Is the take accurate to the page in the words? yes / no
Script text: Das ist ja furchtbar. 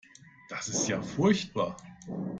yes